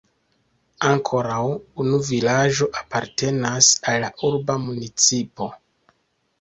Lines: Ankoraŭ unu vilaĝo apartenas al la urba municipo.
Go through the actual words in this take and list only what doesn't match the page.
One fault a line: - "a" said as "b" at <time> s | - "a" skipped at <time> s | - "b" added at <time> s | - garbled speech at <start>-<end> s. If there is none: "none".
none